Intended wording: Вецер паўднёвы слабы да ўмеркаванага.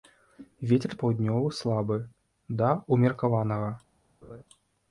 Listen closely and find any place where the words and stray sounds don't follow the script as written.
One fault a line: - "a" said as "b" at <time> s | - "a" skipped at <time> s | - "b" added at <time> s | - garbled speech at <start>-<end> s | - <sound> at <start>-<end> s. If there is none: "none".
- laugh at 4.2-4.4 s